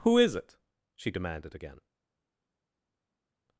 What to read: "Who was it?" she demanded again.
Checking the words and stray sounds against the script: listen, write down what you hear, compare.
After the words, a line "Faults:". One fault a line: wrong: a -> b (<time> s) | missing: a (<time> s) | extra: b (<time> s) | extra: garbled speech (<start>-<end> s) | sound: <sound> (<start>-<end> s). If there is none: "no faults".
"Who is it?" she demanded again.
Faults:
wrong: was -> is (0.2 s)